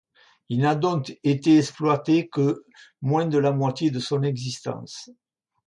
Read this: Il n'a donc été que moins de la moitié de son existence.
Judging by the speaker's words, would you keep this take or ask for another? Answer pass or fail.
fail